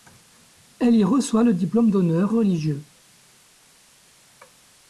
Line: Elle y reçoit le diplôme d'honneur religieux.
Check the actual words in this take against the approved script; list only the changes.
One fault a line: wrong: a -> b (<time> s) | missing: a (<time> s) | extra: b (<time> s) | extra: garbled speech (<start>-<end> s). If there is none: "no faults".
no faults